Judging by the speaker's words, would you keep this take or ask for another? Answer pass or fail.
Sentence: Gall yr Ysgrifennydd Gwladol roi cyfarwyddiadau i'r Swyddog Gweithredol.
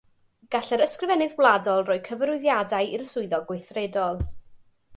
pass